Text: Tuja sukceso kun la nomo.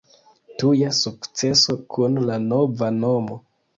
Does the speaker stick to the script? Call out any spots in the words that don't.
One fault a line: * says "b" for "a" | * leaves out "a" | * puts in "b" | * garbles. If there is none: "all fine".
* puts in "nova"